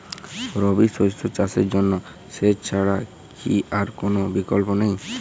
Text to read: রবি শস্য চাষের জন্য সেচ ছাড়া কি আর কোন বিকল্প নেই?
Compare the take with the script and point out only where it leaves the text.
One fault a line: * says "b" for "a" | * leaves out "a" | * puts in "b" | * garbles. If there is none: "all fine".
all fine